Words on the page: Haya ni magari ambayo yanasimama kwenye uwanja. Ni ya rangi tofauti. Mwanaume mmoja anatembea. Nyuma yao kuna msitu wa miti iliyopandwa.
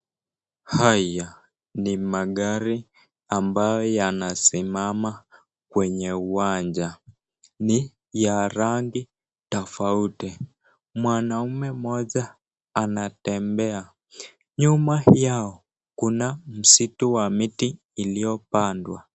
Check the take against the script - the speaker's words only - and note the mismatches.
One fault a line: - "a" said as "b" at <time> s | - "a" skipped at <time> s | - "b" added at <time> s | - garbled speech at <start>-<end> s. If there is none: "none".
none